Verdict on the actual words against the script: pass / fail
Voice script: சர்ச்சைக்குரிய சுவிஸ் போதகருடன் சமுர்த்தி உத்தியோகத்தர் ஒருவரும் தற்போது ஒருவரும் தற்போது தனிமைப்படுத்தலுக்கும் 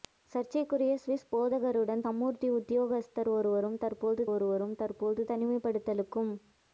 pass